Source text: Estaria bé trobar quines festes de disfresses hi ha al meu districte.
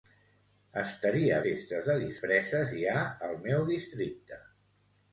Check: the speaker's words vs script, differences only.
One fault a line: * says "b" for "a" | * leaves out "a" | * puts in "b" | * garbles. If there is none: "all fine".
* leaves out "bé trobar quines"